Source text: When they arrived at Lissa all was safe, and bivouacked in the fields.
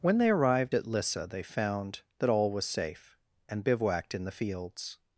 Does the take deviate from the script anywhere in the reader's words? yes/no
yes